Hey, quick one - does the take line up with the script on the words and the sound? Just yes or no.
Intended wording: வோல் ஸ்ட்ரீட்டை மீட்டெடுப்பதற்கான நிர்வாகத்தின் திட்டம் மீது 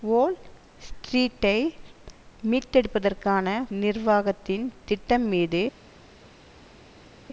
yes